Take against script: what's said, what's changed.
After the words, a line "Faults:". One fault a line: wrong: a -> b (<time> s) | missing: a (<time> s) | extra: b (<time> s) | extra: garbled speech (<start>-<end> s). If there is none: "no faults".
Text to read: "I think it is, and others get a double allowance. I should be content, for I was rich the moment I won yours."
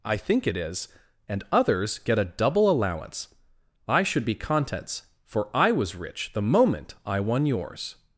"I think it is, and others get a double allowance. I should be contents, for I was rich the moment I won yours."
Faults:
wrong: content -> contents (4.3 s)